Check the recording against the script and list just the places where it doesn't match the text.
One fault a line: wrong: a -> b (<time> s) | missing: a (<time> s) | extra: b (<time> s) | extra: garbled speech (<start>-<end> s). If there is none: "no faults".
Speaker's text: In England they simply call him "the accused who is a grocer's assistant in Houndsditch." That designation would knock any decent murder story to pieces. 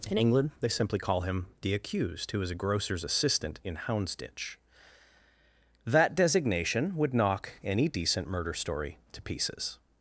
no faults